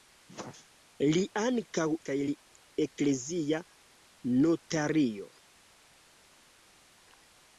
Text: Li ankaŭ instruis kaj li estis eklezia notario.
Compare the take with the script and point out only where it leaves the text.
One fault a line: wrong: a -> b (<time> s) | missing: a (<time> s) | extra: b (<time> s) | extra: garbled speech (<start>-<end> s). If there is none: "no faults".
missing: instruis (1.8 s)
missing: estis (2.3 s)